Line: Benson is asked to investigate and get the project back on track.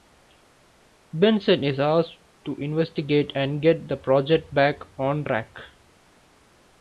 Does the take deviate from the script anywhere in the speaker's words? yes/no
no